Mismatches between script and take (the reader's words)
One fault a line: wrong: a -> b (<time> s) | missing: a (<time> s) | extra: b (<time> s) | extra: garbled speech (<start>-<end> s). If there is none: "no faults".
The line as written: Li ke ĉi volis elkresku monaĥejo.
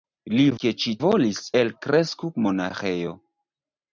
no faults